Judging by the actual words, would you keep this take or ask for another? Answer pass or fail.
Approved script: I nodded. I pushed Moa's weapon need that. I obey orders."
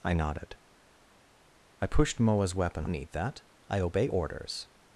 pass